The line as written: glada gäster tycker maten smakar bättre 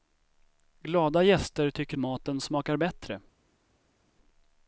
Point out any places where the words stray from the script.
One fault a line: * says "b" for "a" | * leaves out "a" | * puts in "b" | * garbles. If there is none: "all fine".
all fine